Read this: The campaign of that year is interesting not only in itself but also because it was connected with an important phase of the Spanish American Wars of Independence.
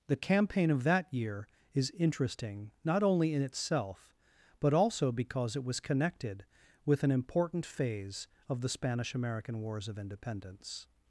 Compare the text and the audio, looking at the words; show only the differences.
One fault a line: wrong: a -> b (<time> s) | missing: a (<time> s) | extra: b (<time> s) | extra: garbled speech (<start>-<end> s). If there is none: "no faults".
no faults